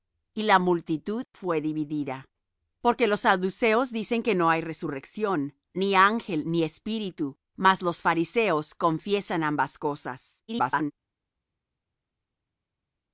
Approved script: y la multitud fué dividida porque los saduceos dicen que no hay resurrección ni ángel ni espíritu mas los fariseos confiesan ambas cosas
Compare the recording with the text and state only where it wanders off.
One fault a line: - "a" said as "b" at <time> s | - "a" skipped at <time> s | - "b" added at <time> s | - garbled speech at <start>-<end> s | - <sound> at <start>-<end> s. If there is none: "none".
- garbled speech at 10.5-10.9 s